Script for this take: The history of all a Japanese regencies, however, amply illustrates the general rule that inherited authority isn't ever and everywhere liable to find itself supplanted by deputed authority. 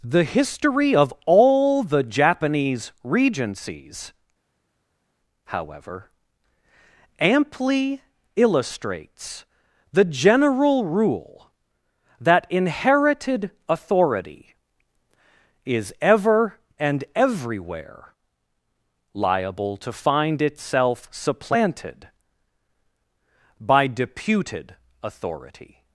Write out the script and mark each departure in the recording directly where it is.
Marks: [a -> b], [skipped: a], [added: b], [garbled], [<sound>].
The history of all [a -> the] Japanese regencies, however, amply illustrates the general rule that inherited authority [isn't -> is] ever and everywhere liable to find itself supplanted by deputed authority.